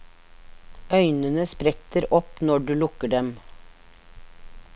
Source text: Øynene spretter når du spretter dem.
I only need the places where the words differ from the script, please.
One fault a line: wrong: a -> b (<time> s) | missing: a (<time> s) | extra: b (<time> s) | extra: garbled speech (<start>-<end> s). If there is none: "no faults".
extra: opp (2.2 s)
wrong: spretter -> lukker (2.8 s)